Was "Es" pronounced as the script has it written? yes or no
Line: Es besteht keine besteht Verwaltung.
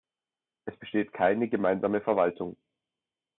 yes